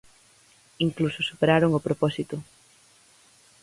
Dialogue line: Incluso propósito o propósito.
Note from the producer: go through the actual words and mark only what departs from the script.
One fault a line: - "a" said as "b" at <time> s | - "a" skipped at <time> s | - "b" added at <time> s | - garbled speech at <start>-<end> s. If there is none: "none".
- "propósito" said as "superaron" at 1.3 s